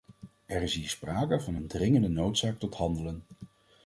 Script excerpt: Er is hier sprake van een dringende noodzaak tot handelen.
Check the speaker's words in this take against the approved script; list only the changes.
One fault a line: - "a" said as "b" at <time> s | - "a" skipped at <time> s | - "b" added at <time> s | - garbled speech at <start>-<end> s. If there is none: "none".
none